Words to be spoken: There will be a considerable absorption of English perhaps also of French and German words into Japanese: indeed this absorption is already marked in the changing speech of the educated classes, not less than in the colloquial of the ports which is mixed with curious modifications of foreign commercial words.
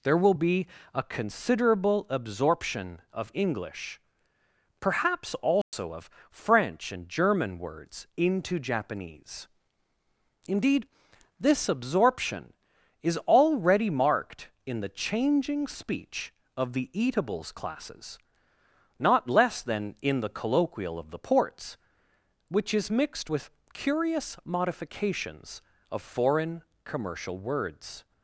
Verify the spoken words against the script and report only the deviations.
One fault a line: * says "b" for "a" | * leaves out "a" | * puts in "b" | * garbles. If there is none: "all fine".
* says "eatables" for "educated"